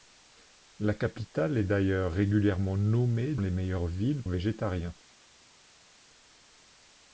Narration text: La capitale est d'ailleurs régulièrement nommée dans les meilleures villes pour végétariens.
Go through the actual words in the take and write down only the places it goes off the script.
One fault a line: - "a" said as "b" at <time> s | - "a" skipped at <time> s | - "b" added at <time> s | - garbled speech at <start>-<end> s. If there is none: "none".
- "dans" skipped at 3.4 s
- "pour" skipped at 4.2 s